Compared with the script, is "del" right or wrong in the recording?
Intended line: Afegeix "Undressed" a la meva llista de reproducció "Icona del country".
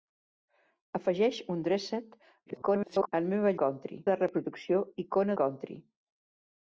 wrong